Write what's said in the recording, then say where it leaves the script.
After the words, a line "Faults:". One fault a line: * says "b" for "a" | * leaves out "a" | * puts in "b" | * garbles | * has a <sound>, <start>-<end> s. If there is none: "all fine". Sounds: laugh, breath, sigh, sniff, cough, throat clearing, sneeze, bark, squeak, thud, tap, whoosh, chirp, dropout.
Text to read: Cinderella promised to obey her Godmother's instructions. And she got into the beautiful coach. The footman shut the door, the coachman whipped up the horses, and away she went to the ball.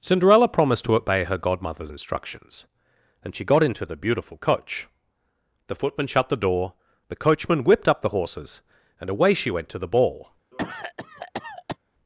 Cinderella promised to obey her Godmother's instructions. And she got into the beautiful coach. The footman shut the door, the coachman whipped up the horses, and away she went to the ball.
Faults:
* has a cough, 10.5-11.8 s